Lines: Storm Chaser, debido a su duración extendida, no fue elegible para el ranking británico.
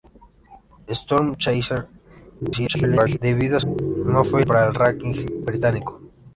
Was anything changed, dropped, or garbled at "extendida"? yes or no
yes